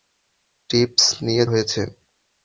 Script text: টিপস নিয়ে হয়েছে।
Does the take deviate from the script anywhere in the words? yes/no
no